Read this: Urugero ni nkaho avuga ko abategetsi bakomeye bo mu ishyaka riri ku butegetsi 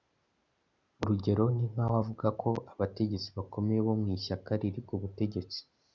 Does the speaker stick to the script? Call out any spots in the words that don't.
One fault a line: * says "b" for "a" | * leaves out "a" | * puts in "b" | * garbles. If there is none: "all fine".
all fine